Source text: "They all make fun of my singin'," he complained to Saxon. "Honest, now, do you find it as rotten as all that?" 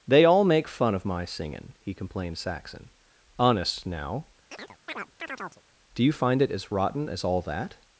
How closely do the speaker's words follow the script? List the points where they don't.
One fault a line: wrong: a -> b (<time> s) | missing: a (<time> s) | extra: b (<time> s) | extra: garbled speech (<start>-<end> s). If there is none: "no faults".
missing: to (2.4 s)